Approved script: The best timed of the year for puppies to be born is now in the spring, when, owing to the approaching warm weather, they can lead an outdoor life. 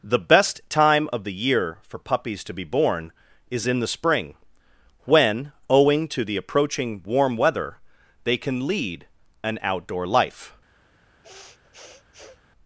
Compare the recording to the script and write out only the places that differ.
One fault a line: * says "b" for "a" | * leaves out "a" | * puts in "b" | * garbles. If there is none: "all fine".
* says "time" for "timed"
* leaves out "now"